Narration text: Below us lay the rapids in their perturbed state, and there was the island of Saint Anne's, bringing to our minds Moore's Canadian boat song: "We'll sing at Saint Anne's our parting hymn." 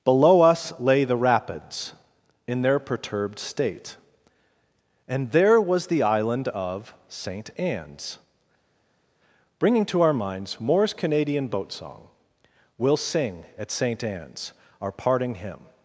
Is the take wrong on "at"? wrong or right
right